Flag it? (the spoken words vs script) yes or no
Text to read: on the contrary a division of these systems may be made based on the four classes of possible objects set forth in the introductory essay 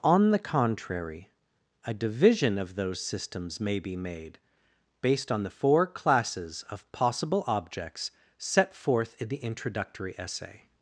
yes